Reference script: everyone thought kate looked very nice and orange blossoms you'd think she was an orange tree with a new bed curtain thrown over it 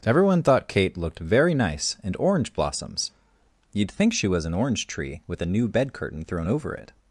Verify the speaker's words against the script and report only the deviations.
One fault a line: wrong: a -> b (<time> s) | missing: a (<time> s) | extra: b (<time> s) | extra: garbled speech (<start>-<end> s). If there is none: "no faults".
no faults